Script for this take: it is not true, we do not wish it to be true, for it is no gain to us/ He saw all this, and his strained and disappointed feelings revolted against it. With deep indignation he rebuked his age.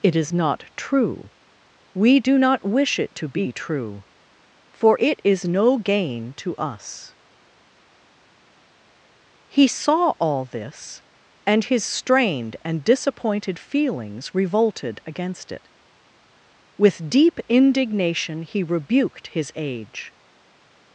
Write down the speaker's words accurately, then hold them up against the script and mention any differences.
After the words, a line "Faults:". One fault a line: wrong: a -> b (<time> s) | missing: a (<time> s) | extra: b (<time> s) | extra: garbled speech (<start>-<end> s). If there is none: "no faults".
it is not true, we do not wish it to be true, for it is no gain to us/ He saw all this, and his strained and disappointed feelings revolted against it. With deep indignation he rebuked his age.
Faults:
no faults